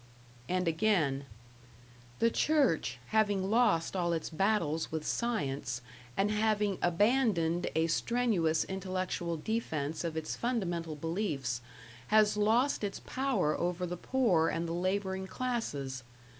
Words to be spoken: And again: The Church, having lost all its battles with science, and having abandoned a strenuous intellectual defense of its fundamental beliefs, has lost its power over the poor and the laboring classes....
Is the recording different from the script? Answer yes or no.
no